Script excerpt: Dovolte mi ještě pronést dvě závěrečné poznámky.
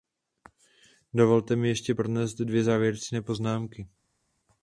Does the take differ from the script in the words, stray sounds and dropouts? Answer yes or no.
no